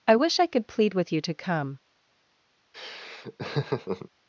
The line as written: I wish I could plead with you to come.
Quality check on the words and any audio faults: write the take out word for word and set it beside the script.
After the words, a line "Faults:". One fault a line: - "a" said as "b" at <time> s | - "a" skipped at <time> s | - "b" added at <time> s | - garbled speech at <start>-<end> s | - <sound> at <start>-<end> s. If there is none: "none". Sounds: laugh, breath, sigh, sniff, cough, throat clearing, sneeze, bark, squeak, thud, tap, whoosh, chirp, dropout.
I wish I could plead with you to come.
Faults:
- laugh at 2.7-4.1 s